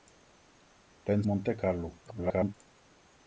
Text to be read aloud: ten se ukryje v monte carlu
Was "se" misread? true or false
true